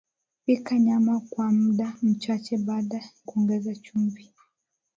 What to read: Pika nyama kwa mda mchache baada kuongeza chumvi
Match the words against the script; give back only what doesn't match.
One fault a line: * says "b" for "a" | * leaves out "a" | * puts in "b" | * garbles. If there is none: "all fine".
all fine